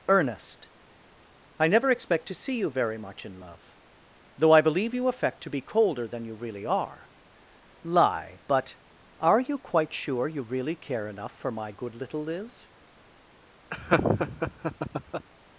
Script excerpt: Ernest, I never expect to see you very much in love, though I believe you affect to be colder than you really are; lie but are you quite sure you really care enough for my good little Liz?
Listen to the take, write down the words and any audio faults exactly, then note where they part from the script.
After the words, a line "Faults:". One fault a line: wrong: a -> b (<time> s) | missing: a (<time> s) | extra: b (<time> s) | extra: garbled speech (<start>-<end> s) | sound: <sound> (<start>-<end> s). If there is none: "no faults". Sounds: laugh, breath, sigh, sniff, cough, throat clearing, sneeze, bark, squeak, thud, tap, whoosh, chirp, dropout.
Ernest, I never expect to see you very much in love, though I believe you affect to be colder than you really are; lie but are you quite sure you really care enough for my good little Liz?
Faults:
sound: laugh (13.7-15.3 s)